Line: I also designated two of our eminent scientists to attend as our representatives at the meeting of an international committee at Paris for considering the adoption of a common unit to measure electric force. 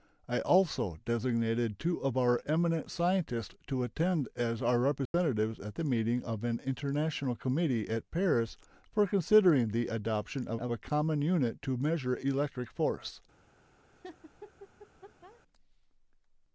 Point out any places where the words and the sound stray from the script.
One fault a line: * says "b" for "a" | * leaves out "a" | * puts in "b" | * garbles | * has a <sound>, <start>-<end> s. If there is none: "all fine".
* has a dropout, 5.1-5.1 s
* puts in "of"
* has a laugh, 13.9-15.4 s